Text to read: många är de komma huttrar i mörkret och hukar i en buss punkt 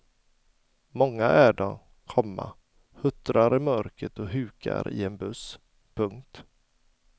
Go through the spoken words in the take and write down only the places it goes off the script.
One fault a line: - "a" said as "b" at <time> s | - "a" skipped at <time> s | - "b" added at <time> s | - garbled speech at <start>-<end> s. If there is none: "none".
none